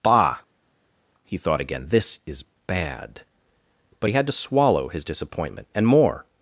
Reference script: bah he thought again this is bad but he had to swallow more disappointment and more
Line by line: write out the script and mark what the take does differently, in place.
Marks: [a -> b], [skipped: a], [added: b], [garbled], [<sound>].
bah he thought again this is bad but he had to swallow [more -> his] disappointment and more